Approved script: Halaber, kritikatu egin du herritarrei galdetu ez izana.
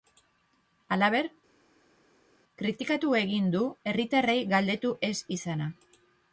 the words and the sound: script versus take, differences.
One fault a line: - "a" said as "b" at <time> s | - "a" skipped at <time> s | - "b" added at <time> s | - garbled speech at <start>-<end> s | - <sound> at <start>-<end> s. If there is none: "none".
none